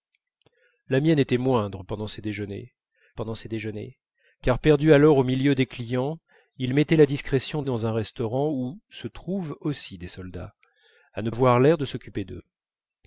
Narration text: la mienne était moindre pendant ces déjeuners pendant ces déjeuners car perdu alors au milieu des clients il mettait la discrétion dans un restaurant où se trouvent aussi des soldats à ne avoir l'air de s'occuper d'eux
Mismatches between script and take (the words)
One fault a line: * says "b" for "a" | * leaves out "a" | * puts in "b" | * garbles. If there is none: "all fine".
all fine